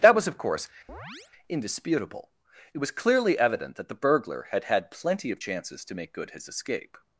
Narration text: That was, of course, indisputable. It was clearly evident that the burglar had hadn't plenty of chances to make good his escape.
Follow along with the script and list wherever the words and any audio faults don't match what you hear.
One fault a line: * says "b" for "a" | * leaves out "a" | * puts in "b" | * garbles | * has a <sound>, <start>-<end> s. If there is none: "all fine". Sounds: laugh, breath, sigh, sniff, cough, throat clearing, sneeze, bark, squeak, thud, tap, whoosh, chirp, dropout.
* has a chirp, 0.9-1.3 s
* says "had" for "hadn't"